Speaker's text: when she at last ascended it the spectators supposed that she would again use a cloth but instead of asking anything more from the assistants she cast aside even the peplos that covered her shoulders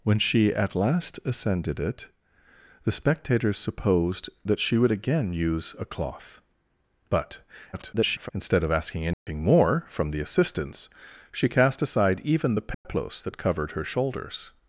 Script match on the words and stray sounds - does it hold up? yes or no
no